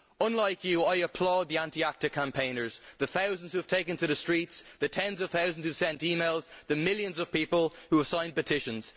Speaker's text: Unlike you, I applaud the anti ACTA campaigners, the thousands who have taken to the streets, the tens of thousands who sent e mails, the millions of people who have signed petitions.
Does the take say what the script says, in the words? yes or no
yes